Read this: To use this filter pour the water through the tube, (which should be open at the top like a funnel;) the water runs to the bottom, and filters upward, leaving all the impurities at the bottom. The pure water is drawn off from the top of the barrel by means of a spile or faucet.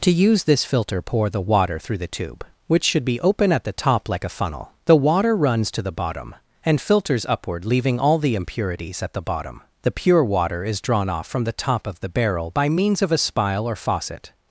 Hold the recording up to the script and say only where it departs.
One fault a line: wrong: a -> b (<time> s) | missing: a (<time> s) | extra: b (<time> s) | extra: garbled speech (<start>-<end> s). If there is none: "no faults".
no faults